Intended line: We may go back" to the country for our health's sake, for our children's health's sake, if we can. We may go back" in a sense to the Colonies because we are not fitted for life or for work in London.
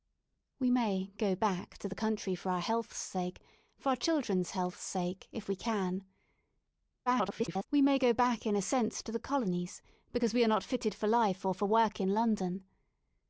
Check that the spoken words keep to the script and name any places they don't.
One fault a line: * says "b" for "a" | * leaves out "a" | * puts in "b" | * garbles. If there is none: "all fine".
* garbles